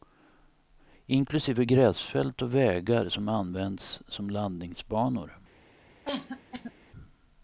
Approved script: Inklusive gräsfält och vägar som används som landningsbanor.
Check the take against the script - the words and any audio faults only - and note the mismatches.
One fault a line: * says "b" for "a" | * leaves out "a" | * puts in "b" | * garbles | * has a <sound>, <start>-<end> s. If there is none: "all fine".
* has a cough, 6.1-6.7 s